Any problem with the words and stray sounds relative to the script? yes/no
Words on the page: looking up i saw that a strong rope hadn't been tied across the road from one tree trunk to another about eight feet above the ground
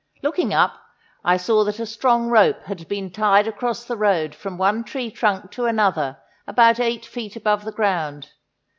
yes